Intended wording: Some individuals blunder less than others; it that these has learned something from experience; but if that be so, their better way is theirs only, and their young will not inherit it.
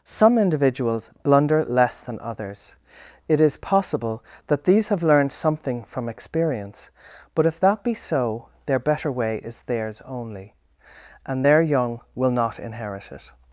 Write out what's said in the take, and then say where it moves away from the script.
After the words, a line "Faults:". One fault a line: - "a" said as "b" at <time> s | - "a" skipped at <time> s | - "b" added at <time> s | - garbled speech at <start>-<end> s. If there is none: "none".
Some individuals blunder less than others; it is possible that these have learned something from experience; but if that be so, their better way is theirs only, and their young will not inherit it.
Faults:
- "is possible" added at 3.4 s
- "has" said as "have" at 4.9 s